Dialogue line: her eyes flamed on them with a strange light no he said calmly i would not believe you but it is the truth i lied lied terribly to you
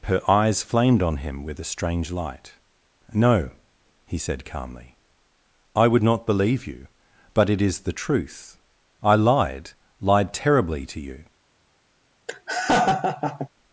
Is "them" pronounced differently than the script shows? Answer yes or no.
yes